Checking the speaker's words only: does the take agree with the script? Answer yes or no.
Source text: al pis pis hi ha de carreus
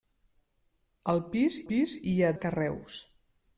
yes